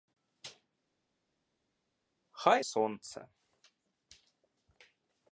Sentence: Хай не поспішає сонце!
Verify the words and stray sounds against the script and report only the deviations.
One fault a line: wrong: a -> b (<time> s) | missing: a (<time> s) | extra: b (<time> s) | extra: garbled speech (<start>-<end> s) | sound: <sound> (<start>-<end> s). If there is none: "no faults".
missing: не поспішає (2.6 s)